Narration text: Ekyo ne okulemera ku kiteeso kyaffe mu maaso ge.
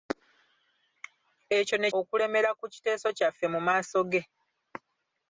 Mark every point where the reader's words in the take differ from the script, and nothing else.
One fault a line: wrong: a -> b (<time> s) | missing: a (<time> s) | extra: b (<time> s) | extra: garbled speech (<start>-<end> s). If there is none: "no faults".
no faults